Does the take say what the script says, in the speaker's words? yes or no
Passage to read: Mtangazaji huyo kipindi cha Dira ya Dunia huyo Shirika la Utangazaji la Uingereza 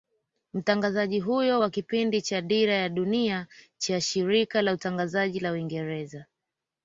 no